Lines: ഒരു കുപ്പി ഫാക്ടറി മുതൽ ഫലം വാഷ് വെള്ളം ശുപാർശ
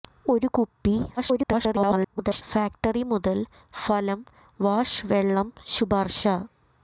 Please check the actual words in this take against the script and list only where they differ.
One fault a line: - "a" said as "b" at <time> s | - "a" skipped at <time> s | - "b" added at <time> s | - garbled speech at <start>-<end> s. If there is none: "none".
- garbled speech at 1.2-2.4 s